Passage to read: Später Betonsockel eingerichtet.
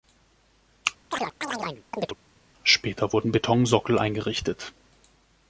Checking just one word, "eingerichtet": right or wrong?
right